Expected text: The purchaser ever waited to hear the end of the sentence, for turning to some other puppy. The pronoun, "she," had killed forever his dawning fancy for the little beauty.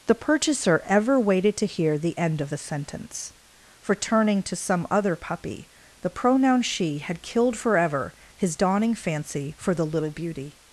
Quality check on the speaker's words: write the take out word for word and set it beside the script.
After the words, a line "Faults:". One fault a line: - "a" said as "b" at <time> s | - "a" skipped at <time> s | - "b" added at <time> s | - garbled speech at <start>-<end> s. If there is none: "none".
The purchaser ever waited to hear the end of the sentence, for turning to some other puppy. The pronoun, "she," had killed forever his dawning fancy for the little beauty.
Faults:
none